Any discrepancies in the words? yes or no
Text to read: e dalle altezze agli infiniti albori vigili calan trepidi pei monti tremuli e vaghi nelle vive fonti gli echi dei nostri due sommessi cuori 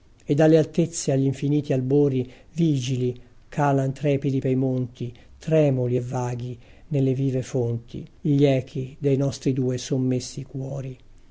no